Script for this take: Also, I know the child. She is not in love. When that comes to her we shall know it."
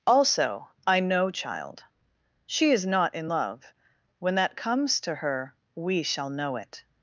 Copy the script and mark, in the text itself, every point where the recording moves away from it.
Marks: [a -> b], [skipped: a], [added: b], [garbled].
Also, I know [skipped: the] child. She is not in love. When that comes to her we shall know it."